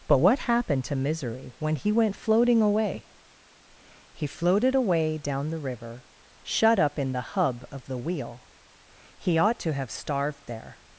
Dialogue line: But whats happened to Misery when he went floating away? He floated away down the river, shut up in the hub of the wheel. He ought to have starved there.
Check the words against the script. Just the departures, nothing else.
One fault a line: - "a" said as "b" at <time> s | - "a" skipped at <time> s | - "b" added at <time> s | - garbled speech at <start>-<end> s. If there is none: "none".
- "whats" said as "what" at 0.2 s